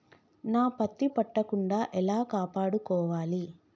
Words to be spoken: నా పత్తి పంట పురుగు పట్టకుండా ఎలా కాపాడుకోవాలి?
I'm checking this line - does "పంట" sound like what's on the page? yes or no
no